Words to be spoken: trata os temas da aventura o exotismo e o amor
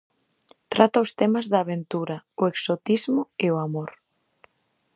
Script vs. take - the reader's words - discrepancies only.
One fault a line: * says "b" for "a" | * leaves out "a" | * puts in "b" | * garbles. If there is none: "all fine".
all fine